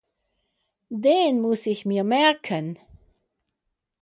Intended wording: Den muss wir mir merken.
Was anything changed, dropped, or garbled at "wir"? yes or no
yes